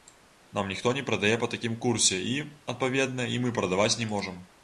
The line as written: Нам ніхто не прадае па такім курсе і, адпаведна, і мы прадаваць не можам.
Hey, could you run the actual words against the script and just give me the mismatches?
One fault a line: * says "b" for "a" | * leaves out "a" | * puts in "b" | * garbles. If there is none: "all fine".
all fine